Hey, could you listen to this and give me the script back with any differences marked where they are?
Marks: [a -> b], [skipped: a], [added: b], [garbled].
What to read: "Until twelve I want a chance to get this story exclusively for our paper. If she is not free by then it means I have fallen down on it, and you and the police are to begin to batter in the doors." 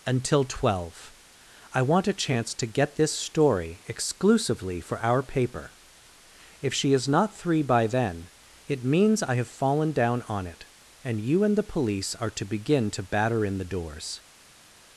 "Until twelve I want a chance to get this story exclusively for our paper. If she is not [free -> three] by then it means I have fallen down on it, and you and the police are to begin to batter in the doors."